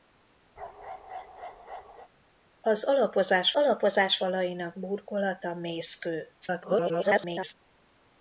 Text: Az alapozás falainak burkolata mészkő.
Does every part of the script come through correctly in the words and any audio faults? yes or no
no